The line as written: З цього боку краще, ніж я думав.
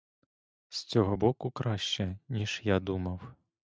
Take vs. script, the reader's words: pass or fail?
pass